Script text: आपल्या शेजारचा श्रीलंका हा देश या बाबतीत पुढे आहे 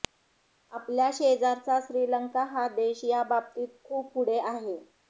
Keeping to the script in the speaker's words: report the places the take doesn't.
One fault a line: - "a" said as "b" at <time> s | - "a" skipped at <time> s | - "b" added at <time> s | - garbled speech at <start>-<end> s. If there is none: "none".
- "खूप" added at 3.8 s